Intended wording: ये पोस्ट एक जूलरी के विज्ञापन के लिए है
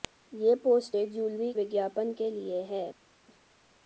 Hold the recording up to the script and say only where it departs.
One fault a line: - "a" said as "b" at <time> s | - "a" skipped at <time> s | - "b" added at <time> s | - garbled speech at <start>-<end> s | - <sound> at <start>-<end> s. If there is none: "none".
- "के" skipped at 1.5 s